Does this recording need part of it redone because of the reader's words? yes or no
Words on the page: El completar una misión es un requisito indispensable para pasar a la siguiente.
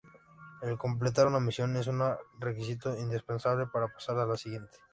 no